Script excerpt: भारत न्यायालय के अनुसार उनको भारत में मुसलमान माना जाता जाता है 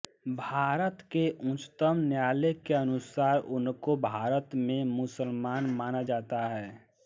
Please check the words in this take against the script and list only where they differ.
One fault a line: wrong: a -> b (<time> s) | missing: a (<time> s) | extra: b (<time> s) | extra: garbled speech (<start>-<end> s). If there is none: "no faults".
extra: के उच्चतम (1.1 s)
missing: जाता (6.5 s)